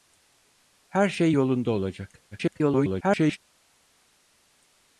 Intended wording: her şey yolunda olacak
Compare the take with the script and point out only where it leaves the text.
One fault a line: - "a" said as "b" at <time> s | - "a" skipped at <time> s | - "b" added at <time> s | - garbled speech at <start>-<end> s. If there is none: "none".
- garbled speech at 2.3-3.4 s